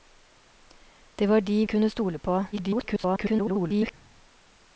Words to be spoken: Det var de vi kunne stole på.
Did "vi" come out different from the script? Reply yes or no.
yes